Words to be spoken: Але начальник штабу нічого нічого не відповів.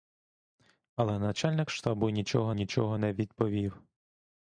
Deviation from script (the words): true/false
false